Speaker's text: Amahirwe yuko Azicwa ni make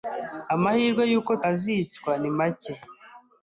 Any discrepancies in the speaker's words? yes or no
no